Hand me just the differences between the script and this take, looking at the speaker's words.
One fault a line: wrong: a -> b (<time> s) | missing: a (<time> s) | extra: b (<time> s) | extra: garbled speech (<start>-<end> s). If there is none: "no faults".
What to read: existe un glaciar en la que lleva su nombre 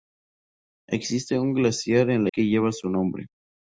no faults